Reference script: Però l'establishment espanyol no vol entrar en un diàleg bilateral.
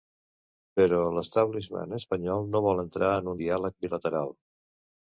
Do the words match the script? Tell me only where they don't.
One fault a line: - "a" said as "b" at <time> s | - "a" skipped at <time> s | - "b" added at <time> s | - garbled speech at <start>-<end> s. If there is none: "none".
- "un" skipped at 3.3 s